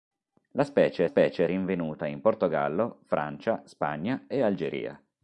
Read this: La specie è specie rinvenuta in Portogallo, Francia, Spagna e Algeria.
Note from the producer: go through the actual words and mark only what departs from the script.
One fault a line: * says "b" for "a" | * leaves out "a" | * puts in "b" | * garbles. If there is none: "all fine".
all fine